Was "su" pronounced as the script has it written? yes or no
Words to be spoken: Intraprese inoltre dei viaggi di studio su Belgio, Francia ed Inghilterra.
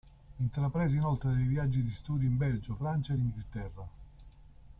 no